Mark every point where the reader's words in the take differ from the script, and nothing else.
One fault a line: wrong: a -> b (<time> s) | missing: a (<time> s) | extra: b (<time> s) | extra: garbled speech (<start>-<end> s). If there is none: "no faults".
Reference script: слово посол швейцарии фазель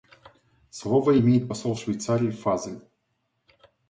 extra: имеет (1.2 s)